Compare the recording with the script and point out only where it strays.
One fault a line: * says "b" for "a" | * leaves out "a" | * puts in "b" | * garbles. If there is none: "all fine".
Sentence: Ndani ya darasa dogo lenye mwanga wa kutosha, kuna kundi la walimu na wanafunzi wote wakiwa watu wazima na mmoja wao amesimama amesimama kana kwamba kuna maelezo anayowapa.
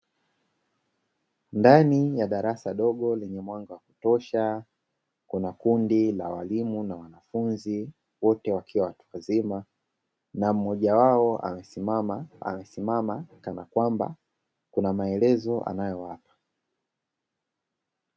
all fine